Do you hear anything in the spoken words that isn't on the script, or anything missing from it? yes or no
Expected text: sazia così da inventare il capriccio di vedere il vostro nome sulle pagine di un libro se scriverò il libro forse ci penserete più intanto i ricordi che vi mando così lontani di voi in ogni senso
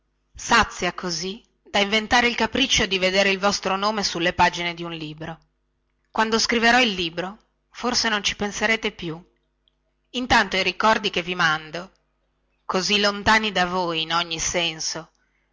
yes